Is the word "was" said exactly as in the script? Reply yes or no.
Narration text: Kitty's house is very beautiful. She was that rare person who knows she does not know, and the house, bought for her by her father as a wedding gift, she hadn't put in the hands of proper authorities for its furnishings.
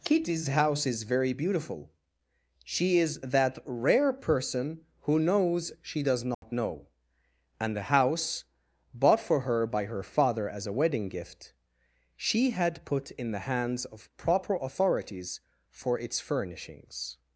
no